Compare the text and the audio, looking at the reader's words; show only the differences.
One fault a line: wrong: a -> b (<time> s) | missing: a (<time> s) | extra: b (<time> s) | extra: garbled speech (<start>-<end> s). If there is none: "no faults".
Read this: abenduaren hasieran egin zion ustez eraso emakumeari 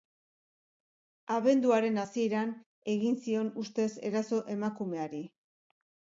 no faults